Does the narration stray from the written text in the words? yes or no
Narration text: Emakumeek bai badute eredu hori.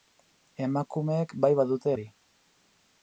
yes